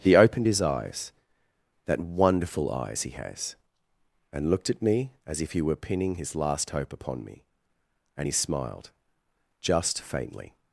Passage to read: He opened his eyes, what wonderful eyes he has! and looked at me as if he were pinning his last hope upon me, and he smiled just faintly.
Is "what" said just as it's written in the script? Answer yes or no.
no